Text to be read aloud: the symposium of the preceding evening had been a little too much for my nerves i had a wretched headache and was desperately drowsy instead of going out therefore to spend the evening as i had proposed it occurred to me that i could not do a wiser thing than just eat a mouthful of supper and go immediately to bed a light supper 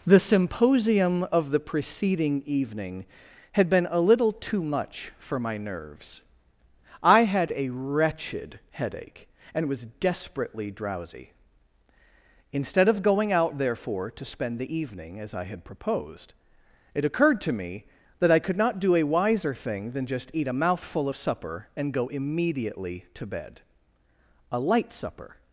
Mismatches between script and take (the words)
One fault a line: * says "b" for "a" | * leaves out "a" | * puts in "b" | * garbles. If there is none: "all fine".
all fine